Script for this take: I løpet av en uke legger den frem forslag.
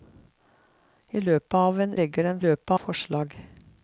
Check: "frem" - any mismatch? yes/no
yes